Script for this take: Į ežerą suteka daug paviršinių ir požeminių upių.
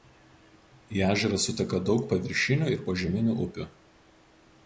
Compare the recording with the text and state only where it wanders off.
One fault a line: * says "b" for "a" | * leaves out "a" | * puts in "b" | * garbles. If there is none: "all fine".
all fine